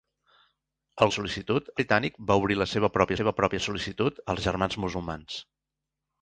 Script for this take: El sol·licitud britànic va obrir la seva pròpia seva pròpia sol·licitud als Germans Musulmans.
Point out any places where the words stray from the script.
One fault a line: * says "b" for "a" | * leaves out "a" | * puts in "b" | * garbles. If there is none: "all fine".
all fine